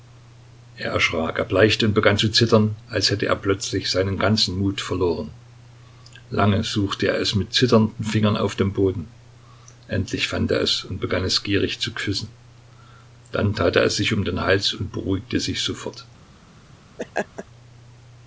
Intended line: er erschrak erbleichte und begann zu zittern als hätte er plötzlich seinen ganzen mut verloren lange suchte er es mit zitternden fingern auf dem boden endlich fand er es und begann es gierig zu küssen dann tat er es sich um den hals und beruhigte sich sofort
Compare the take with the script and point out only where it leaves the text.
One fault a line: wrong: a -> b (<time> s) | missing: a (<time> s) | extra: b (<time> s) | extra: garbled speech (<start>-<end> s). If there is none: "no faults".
no faults